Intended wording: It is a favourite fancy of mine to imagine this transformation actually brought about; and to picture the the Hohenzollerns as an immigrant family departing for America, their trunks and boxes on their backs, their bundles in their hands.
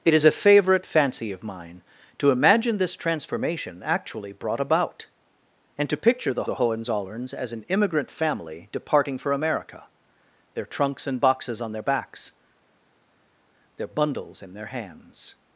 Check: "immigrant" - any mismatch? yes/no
no